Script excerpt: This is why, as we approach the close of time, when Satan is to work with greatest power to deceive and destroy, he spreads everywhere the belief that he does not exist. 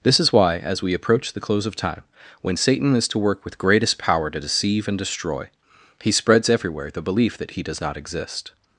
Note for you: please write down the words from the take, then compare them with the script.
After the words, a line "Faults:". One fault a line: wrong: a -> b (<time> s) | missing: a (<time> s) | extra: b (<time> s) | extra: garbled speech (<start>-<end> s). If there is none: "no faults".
This is why, as we approach the close of time, when Satan is to work with greatest power to deceive and destroy, he spreads everywhere the belief that he does not exist.
Faults:
no faults